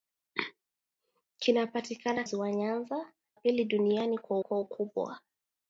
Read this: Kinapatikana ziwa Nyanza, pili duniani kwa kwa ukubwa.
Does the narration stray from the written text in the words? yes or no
no